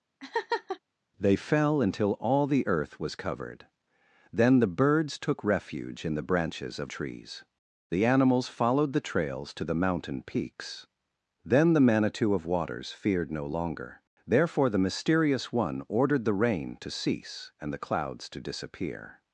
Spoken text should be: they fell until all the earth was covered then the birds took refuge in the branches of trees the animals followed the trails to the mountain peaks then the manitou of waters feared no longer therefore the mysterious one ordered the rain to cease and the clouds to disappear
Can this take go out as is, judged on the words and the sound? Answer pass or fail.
fail